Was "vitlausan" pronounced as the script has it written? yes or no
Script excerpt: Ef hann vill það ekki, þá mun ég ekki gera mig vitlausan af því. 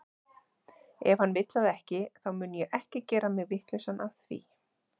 yes